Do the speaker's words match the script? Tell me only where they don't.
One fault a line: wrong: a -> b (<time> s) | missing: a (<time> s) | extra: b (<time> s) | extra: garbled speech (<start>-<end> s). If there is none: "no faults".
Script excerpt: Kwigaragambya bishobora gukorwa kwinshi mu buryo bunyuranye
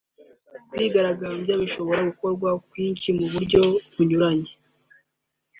no faults